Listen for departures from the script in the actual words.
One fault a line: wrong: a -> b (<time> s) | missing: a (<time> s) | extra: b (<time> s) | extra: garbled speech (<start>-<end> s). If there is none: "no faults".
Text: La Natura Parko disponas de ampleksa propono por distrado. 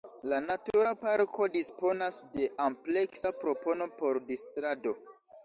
no faults